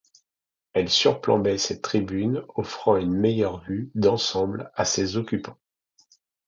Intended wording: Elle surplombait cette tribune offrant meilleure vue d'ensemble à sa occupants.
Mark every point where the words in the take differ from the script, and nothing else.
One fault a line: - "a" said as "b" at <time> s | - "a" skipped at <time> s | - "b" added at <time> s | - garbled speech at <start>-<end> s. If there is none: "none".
- "une" added at 2.9 s
- "sa" said as "ses" at 4.8 s